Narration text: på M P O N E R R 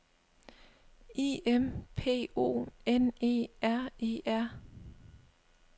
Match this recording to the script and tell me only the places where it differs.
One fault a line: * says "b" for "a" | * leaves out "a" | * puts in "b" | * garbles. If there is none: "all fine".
* says "I" for "på"
* puts in "E"